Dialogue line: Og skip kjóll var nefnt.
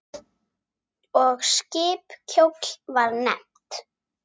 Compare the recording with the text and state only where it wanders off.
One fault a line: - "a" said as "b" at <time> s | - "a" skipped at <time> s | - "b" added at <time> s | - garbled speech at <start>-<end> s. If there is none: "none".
none